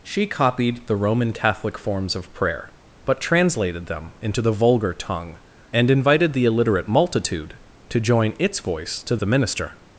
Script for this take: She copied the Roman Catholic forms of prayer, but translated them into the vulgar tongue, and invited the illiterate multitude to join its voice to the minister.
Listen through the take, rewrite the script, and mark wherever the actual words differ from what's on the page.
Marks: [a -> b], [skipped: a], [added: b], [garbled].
She copied the Roman Catholic forms of prayer, but translated them into the vulgar tongue, and invited the illiterate multitude to join its voice to the minister.